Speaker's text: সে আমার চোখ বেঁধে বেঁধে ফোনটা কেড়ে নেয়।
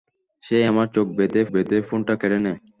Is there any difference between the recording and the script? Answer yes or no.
no